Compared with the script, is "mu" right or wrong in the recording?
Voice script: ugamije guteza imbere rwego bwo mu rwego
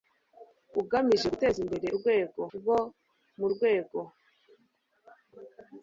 right